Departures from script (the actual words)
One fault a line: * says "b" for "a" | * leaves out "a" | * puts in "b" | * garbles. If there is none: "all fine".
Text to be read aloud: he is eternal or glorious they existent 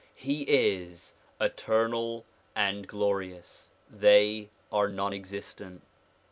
* says "and" for "or"
* puts in "are non"